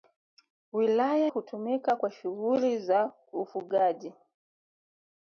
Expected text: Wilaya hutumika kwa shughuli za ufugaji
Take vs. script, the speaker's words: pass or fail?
pass